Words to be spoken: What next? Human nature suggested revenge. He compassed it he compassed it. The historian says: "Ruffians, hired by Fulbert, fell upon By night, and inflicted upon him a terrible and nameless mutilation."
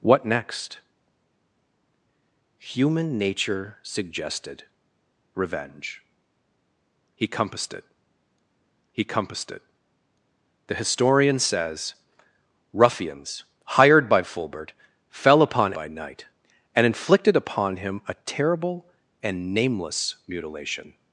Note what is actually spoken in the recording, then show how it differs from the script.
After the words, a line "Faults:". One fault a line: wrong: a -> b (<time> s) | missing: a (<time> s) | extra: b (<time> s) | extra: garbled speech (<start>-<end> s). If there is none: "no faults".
What next? Human nature suggested revenge. He compassed it he compassed it. The historian says: "Ruffians, hired by Fulbert, fell upon By night, and inflicted upon him a terrible and nameless mutilation."
Faults:
no faults